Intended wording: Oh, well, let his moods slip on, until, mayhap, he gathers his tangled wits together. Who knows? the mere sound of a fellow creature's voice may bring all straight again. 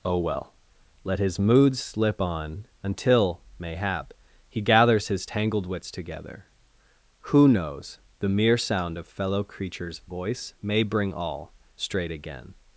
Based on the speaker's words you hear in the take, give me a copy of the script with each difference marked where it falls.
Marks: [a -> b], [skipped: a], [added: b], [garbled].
Oh, well, let his moods slip on, until, mayhap, he gathers his tangled wits together. Who knows? the mere sound of [skipped: a] fellow creature's voice may bring all straight again.